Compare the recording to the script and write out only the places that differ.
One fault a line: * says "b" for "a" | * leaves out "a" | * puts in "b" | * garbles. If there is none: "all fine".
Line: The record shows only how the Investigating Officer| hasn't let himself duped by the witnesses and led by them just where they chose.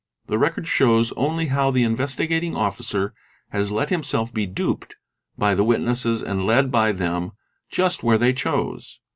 * says "has" for "hasn't"
* puts in "be"